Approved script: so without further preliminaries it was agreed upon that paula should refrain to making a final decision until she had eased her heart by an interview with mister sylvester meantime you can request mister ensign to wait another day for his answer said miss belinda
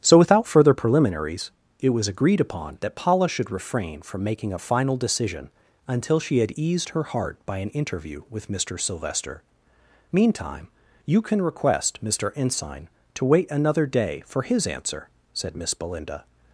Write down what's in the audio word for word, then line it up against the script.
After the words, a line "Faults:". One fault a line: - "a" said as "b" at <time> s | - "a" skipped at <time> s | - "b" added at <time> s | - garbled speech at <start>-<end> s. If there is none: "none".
so without further preliminaries it was agreed upon that paula should refrain from making a final decision until she had eased her heart by an interview with mister sylvester meantime you can request mister ensign to wait another day for his answer said miss belinda
Faults:
- "to" said as "from" at 4.0 s